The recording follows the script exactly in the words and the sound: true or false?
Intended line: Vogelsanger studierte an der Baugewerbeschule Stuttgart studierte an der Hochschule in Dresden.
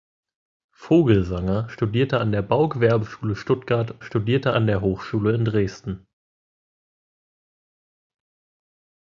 true